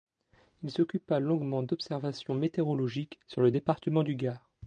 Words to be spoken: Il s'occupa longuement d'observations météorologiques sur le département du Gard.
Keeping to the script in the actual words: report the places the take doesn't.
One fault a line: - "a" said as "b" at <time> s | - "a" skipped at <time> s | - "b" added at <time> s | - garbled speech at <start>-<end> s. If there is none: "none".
none